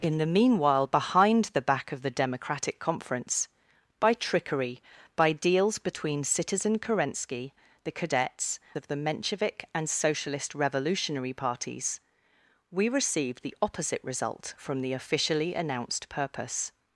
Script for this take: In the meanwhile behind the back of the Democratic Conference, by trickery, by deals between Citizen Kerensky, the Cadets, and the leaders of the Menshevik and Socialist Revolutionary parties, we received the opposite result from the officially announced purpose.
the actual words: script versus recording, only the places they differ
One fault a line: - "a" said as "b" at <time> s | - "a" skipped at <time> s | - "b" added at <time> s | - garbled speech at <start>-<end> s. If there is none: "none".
- "and the leaders" skipped at 8.6 s